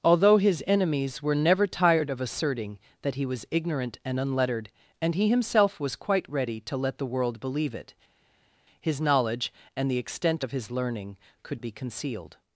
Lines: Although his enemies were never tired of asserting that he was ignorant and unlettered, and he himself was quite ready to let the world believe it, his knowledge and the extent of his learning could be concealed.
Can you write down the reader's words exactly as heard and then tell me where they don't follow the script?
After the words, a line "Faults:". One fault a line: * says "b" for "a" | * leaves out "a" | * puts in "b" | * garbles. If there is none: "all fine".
Although his enemies were never tired of asserting that he was ignorant and unlettered, and he himself was quite ready to let the world believe it, his knowledge and the extent of his learning could be concealed.
Faults:
all fine